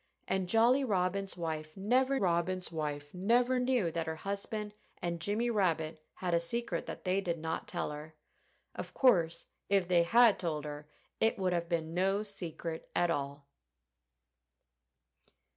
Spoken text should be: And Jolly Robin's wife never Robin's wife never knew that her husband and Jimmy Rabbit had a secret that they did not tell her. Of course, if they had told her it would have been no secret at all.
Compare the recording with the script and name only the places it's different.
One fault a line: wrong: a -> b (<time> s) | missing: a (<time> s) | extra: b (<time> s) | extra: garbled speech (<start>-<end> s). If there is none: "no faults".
no faults